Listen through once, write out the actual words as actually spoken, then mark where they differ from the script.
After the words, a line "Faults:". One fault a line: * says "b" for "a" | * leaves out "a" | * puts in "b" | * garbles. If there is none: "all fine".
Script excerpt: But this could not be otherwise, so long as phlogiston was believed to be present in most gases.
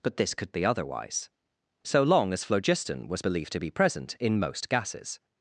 But this could be otherwise, so long as phlogiston was believed to be present in most gases.
Faults:
* leaves out "not"